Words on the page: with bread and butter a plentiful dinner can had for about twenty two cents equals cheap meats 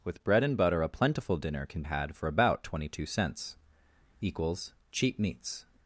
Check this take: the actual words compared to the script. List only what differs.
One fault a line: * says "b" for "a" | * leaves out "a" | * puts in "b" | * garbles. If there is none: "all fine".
all fine